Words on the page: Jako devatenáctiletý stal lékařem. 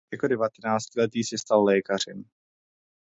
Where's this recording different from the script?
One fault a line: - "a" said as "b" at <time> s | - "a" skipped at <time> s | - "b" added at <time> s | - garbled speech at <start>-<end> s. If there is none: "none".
- "se" added at 1.2 s